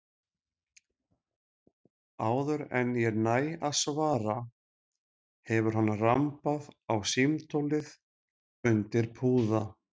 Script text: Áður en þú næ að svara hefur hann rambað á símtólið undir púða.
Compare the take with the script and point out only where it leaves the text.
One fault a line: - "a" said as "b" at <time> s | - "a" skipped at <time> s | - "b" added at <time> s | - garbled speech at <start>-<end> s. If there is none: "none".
- "þú" said as "ég" at 3.0 s